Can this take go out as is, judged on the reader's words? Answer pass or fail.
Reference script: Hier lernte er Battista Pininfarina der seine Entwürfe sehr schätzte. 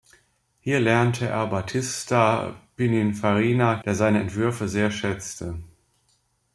pass